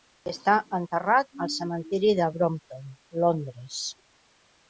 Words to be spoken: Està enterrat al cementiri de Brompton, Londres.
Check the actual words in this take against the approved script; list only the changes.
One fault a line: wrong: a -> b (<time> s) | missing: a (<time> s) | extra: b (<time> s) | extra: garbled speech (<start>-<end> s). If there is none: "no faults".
no faults